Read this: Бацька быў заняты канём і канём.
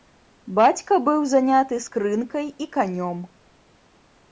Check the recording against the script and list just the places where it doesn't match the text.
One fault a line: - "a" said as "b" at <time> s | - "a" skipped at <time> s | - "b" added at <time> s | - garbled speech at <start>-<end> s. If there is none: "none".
- "канём" said as "скрынкай" at 1.9 s